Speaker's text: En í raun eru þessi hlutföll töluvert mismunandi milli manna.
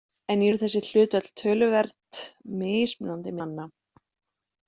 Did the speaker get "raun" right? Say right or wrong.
wrong